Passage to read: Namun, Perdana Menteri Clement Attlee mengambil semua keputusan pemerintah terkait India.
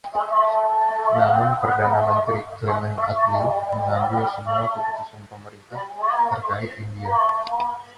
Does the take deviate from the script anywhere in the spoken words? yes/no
no